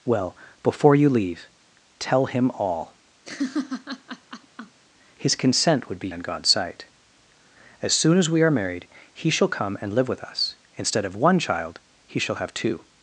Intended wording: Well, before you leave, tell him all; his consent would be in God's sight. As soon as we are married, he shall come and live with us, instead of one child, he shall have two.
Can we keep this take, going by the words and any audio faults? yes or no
no